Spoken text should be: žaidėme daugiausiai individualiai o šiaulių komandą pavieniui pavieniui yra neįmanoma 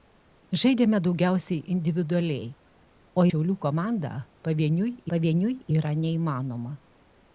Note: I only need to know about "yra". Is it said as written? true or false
true